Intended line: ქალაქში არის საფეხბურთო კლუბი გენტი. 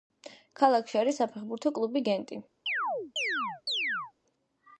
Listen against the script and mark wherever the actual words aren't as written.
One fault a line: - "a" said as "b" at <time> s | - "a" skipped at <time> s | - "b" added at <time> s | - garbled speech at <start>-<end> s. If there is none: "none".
none